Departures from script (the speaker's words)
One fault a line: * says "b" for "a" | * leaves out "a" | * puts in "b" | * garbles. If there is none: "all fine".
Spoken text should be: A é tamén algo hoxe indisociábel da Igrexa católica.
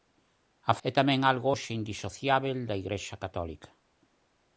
all fine